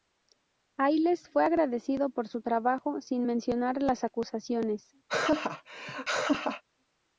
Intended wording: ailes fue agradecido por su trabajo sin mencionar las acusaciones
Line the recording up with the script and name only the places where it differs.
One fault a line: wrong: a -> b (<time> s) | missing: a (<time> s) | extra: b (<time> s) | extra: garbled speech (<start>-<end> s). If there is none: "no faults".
no faults